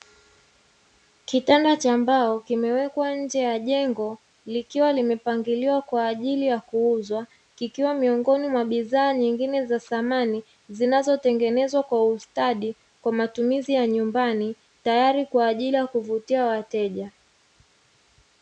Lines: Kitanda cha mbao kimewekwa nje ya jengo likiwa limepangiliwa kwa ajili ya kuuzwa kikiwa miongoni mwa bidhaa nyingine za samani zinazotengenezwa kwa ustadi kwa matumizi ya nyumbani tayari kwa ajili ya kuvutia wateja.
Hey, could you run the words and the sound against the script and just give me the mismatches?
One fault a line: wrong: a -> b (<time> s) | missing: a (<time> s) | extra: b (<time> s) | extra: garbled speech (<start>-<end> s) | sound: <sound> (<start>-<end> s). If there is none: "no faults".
no faults